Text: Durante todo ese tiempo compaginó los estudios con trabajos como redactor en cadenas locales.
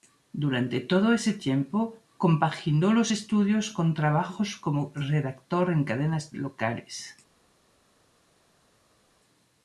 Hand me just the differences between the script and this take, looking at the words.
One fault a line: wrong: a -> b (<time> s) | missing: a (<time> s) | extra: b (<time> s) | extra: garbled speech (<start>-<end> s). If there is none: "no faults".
no faults